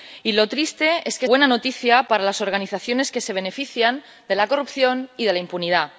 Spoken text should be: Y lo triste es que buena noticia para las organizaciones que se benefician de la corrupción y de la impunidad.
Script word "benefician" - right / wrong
right